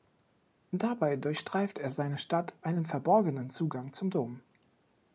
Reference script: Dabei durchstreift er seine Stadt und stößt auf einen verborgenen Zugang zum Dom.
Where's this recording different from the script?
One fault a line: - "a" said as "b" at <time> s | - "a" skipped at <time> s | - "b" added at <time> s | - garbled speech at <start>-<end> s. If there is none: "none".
- "und stößt auf" skipped at 2.5 s